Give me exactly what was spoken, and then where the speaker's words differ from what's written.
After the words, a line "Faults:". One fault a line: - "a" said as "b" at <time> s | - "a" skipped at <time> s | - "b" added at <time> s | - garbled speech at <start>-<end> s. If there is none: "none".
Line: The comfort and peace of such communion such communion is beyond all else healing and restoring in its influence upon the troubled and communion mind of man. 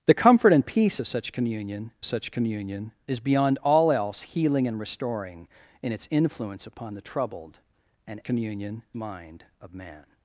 The comfort and peace of such communion such communion is beyond all else healing and restoring in its influence upon the troubled and communion mind of man.
Faults:
none